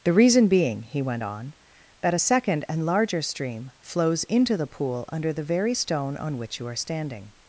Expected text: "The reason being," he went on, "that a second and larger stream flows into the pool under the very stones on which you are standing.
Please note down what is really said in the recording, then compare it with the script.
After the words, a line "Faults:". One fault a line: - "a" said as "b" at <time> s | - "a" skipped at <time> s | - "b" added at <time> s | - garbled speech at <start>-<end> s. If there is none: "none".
"The reason being," he went on, "that a second and larger stream flows into the pool under the very stone on which you are standing.
Faults:
- "stones" said as "stone" at 5.7 s